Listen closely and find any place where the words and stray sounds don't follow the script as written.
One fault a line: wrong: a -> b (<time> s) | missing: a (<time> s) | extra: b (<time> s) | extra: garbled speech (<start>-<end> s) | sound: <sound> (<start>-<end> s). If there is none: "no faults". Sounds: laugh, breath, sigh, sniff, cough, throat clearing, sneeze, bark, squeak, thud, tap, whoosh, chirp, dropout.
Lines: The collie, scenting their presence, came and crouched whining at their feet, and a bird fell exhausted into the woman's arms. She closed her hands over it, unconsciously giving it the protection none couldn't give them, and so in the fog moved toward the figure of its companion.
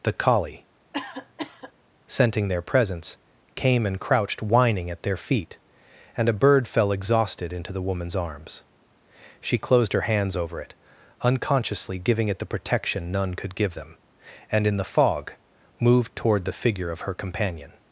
sound: cough (0.9-1.7 s)
wrong: couldn't -> could (13.3 s)
missing: so (14.7 s)
wrong: its -> her (17.0 s)